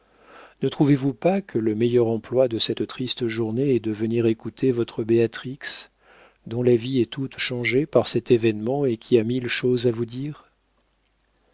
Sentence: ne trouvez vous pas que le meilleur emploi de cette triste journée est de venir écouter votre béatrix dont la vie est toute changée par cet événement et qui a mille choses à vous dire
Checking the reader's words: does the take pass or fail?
pass